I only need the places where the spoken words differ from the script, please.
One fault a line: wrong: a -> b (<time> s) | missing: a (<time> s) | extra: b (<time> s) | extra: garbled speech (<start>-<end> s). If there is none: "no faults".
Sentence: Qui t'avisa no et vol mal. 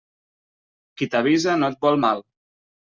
no faults